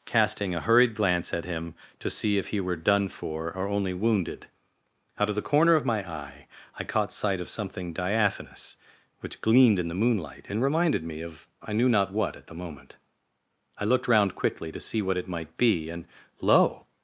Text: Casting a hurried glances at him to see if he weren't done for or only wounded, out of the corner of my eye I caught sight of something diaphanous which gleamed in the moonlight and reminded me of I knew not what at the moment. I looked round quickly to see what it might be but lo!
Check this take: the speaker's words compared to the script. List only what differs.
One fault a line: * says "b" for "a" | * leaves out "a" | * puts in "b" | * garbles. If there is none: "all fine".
* says "glance" for "glances"
* says "were" for "weren't"
* says "and" for "but"